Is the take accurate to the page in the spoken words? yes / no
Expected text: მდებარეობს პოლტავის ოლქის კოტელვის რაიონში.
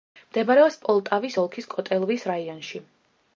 yes